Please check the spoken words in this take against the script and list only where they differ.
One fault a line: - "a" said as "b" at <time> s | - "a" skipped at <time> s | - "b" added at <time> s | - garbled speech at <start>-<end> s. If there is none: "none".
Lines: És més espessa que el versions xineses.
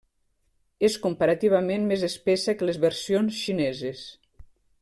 - "comparativament" added at 1.0 s
- "el" said as "les" at 2.7 s